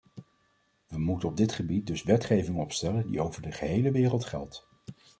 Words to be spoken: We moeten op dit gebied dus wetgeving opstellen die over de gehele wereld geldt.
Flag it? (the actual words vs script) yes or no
no